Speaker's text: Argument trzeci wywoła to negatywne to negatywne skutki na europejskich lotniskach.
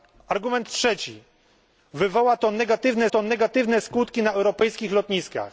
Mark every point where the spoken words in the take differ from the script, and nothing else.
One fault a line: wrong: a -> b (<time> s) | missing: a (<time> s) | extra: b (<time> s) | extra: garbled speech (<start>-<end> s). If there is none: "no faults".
no faults